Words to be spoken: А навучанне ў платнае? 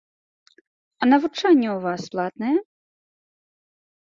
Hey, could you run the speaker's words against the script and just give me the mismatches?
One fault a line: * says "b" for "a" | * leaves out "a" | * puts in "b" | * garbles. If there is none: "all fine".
* puts in "вас"